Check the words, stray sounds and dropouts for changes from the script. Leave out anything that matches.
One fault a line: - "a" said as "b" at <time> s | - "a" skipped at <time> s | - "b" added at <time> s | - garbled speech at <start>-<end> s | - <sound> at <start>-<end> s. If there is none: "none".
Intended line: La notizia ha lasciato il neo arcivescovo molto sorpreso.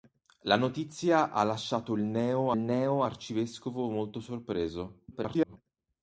- "neo" added at 2.6 s
- garbled speech at 5.1-5.6 s